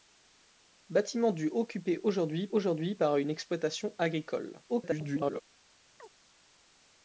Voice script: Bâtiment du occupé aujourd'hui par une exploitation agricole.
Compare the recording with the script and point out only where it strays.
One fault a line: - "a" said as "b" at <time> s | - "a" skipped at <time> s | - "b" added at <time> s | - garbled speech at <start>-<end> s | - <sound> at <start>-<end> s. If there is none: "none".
- "aujourd'hui" added at 2.5 s
- garbled speech at 4.7-5.4 s
- chirp at 6.0-6.1 s